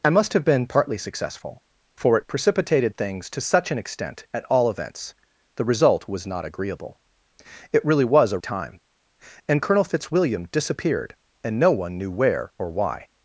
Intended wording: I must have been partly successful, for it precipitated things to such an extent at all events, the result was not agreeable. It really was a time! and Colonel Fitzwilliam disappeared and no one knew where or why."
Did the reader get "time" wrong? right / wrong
right